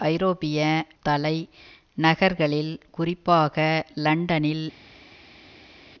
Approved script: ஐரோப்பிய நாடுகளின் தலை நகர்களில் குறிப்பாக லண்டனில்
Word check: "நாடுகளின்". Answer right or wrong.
wrong